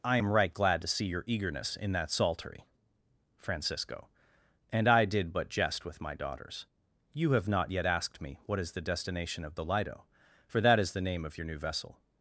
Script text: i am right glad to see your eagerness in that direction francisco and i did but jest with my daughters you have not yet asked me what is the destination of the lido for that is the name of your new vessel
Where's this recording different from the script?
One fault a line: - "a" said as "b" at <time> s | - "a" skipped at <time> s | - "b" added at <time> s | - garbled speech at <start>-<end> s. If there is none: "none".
- "direction" said as "psaltery" at 2.1 s